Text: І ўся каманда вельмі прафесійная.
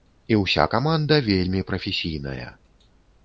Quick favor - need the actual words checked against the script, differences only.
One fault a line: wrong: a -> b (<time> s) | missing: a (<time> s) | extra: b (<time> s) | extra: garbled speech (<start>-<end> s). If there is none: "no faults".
no faults